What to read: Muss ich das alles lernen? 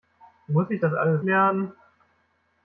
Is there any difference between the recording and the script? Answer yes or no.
no